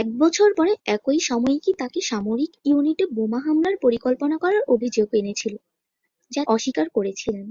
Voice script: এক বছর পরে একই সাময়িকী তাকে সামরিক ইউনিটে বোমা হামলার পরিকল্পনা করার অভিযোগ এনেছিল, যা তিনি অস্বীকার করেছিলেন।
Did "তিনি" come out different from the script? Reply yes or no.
yes